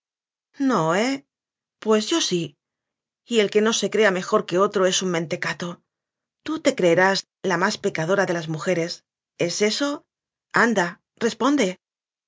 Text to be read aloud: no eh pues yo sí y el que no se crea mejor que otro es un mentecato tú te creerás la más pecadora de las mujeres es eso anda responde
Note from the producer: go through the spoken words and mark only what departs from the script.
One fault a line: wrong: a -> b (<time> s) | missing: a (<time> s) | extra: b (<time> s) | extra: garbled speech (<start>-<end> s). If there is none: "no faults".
no faults